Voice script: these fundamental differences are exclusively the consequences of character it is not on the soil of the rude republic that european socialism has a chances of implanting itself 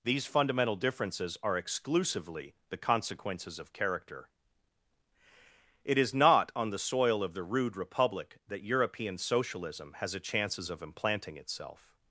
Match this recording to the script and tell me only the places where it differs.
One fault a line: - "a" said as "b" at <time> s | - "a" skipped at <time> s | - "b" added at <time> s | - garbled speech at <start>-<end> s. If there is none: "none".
none